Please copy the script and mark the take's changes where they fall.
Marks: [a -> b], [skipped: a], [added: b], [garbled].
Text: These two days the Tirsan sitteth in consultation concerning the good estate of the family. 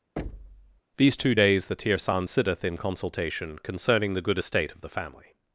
These two days the Tirsan sitteth in consultation concerning the good estate of the family.